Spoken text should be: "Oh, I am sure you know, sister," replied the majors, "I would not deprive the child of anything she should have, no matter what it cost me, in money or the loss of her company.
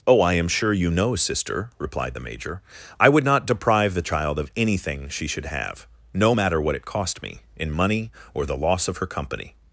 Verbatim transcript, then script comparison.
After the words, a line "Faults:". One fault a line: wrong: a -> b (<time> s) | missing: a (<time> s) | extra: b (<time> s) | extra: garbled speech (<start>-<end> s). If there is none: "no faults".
"Oh, I am sure you know, sister," replied the major, "I would not deprive the child of anything she should have, no matter what it cost me, in money or the loss of her company.
Faults:
wrong: majors -> major (2.2 s)